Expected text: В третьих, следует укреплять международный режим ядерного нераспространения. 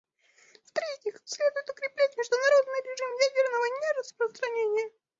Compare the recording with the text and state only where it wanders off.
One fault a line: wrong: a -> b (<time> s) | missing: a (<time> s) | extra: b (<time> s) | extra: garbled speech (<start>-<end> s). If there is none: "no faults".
no faults